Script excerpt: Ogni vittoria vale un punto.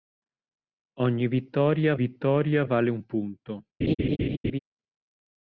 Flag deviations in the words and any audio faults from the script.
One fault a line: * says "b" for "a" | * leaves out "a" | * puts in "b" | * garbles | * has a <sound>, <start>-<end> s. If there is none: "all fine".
* puts in "vittoria"
* has a laugh, 3.8-4.6 s